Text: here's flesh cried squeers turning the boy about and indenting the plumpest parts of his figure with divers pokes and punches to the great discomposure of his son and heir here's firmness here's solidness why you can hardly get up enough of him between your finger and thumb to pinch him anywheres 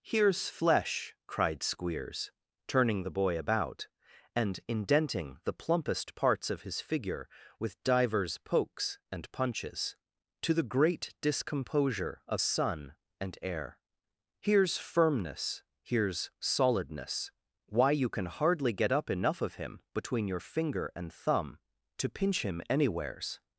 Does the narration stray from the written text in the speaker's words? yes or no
yes